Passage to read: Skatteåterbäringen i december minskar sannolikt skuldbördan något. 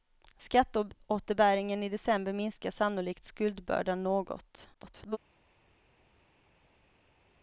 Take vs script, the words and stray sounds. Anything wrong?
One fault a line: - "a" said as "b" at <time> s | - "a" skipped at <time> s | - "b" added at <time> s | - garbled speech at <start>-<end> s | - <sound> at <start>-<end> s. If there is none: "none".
- garbled speech at 4.7-5.2 s